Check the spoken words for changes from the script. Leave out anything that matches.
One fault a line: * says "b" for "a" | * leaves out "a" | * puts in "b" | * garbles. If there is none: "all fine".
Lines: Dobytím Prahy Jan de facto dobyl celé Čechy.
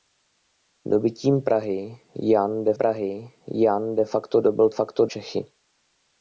* puts in "Prahy Jan de"
* says "facto" for "celé"